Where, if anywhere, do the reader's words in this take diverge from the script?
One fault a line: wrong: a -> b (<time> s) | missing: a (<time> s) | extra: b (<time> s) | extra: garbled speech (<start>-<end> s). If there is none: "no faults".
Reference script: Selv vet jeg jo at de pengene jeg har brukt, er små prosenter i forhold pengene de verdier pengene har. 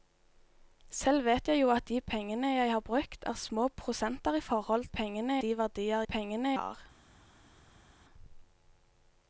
no faults